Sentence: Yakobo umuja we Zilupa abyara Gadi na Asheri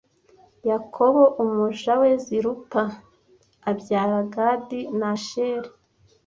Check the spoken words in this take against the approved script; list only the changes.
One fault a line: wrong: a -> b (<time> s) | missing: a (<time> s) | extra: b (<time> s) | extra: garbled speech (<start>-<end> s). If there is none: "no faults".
no faults